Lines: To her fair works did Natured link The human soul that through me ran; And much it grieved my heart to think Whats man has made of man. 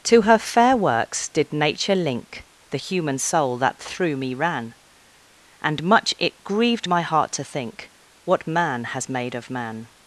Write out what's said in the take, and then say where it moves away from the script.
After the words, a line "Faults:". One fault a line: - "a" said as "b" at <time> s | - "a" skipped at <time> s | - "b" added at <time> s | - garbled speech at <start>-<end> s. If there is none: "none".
To her fair works did Nature link The human soul that through me ran; And much it grieved my heart to think What man has made of man.
Faults:
- "Natured" said as "Nature" at 1.5 s
- "Whats" said as "What" at 8.2 s